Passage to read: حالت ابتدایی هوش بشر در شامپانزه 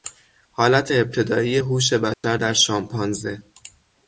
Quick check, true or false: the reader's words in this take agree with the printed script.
true